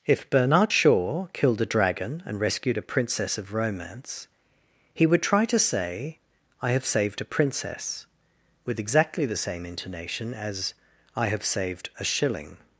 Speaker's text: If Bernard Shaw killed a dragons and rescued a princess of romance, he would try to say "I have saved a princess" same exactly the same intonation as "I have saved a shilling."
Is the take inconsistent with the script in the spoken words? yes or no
yes